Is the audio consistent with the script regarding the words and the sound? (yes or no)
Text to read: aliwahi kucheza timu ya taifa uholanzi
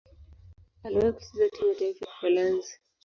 yes